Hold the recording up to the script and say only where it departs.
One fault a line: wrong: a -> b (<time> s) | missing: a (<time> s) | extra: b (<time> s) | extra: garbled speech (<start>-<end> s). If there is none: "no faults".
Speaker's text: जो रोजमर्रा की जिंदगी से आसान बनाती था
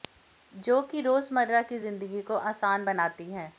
extra: कि (0.8 s)
wrong: से -> को (2.2 s)
wrong: था -> है (3.3 s)